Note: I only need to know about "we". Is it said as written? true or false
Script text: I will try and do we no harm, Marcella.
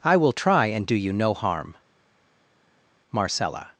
false